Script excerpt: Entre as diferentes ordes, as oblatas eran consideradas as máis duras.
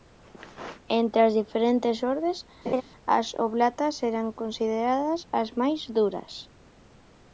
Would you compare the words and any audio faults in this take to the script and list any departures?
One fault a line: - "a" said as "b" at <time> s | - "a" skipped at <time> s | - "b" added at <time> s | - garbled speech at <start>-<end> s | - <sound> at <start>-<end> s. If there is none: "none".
- laugh at 2.7-2.8 s